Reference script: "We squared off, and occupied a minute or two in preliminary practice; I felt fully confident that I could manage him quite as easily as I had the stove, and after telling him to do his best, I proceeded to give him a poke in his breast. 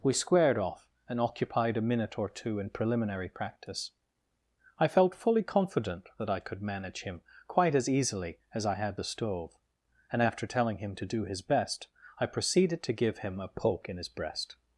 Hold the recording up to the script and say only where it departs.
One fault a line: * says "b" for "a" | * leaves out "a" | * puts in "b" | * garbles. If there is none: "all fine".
all fine